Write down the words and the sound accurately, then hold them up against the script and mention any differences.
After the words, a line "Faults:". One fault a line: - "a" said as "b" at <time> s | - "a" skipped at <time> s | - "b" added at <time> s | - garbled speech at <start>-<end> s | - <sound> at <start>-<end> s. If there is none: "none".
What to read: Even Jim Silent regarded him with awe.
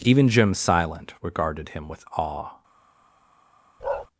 Even Jim Silent regarded him with awe.
Faults:
- bark at 3.8-4.1 s